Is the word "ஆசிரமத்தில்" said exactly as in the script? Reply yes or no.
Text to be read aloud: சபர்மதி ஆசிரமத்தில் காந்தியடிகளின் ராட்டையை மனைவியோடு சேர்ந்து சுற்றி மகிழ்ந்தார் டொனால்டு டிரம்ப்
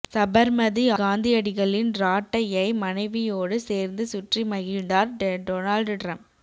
no